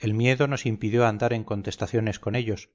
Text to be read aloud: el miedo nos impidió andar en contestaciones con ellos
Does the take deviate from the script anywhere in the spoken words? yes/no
no